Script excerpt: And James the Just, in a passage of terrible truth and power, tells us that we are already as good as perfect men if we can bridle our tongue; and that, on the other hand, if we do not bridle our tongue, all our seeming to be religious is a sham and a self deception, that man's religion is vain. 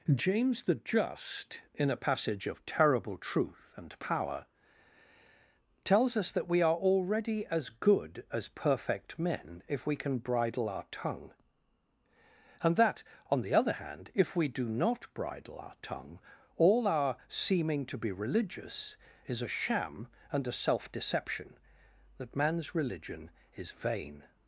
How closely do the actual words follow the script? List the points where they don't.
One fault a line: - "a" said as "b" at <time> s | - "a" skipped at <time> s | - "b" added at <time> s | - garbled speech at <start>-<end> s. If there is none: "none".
- "And" skipped at 0.1 s